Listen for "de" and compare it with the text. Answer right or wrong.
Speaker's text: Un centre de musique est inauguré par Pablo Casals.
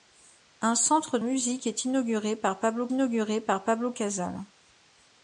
wrong